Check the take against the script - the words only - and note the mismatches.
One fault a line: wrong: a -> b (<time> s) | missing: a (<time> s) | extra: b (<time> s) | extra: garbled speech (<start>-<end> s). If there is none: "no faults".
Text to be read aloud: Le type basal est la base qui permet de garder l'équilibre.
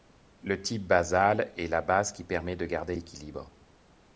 no faults